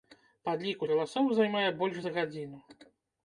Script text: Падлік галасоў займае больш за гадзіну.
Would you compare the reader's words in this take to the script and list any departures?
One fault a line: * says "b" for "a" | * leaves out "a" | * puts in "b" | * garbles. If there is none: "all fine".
all fine